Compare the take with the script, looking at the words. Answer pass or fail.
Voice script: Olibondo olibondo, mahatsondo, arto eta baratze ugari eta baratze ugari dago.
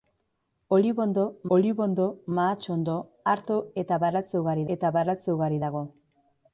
pass